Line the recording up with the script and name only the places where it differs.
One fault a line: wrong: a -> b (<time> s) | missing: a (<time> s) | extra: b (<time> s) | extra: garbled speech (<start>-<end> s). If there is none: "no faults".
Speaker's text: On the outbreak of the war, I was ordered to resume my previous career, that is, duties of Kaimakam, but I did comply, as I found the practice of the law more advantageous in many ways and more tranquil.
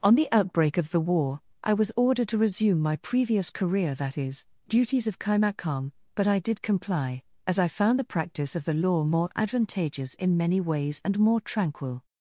no faults